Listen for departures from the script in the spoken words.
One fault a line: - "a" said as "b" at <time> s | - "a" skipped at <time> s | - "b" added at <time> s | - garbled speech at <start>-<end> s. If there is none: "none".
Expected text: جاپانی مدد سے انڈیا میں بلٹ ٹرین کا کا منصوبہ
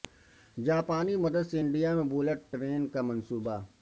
- "کا" skipped at 3.0 s